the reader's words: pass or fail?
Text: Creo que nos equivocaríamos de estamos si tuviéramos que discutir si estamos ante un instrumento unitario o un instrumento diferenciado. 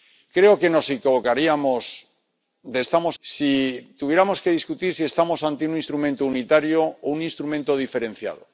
pass